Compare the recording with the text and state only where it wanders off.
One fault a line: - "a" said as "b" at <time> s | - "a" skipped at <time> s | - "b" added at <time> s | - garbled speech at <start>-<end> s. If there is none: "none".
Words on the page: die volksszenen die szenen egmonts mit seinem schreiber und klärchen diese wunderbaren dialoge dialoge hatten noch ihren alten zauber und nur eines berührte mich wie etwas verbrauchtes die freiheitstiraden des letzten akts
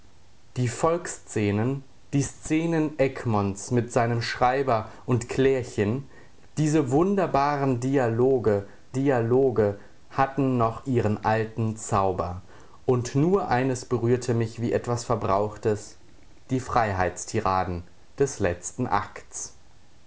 none